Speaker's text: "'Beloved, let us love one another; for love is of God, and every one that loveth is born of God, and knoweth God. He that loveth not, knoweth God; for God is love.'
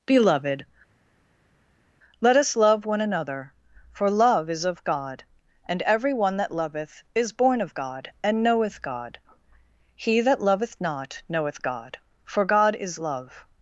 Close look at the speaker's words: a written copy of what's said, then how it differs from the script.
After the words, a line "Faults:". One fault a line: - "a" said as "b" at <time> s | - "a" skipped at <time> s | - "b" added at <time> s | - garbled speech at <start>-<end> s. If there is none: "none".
"'Beloved, let us love one another; for love is of God, and every one that loveth is born of God, and knoweth God. He that loveth not, knoweth God; for God is love.'
Faults:
none